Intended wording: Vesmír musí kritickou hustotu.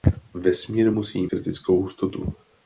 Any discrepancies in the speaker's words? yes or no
no